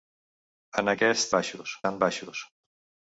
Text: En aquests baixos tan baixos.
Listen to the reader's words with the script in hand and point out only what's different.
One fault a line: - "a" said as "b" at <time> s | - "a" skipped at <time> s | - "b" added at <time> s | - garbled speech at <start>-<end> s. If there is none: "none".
none